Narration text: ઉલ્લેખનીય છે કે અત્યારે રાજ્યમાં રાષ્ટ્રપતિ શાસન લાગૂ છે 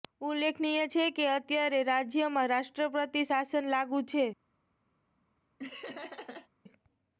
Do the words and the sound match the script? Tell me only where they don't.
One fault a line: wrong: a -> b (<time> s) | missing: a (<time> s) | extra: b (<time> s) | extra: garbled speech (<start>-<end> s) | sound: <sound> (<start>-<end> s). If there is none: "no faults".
sound: laugh (5.6-6.5 s)